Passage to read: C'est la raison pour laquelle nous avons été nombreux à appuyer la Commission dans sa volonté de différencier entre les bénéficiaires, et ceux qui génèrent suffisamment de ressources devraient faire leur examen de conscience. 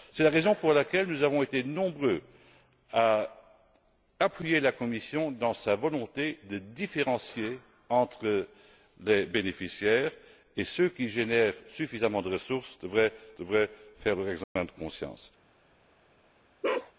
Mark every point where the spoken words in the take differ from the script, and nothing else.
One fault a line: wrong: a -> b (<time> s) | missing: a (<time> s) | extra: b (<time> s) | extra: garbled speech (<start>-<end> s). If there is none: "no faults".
extra: devraient (13.4 s)